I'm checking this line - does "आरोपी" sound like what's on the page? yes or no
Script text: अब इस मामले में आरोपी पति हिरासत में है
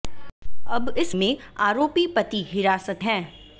yes